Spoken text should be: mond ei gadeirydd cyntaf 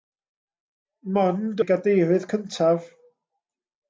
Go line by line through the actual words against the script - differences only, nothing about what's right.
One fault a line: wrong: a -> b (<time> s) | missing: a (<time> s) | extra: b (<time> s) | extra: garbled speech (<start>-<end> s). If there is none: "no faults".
no faults